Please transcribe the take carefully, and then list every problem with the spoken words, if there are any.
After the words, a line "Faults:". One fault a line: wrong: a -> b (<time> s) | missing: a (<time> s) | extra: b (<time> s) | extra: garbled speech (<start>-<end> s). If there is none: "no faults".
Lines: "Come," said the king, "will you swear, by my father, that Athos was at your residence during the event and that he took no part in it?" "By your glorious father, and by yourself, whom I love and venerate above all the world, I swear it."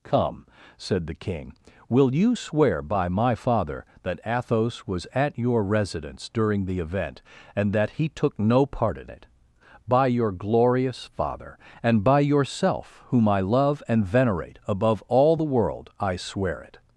"Come," said the king, "will you swear, by my father, that Athos was at your residence during the event and that he took no part in it?" "By your glorious father, and by yourself, whom I love and venerate above all the world, I swear it."
Faults:
no faults